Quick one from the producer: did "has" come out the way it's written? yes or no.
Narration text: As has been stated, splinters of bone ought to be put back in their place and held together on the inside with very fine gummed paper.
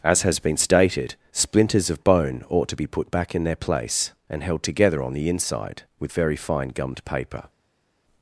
yes